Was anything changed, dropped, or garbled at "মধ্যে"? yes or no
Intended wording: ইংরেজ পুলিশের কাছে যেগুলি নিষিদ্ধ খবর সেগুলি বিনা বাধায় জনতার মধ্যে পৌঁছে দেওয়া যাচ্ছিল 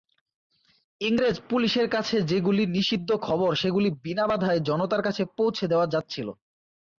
yes